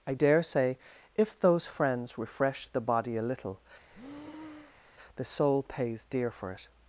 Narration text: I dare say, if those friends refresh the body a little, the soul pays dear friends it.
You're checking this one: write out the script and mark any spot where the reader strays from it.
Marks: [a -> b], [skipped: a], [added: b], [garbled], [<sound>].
I dare say, if those friends refresh the body a little, [breath] the soul pays dear [friends -> for] it.